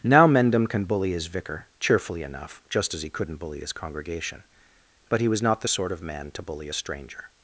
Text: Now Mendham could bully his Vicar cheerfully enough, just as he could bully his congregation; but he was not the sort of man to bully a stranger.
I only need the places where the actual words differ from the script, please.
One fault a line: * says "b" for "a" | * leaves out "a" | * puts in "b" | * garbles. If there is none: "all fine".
* says "can" for "could"
* says "couldn't" for "could"